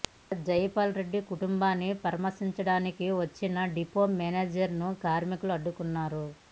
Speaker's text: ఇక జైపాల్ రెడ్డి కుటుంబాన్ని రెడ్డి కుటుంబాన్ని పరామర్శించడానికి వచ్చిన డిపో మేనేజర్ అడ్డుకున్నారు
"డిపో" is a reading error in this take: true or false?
false